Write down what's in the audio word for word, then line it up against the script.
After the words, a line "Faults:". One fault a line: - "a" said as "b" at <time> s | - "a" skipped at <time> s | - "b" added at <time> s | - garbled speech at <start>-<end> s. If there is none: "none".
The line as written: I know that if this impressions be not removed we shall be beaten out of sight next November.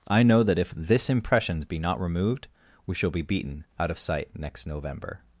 I know that if this impressions be not removed we shall be beaten out of sight next November.
Faults:
none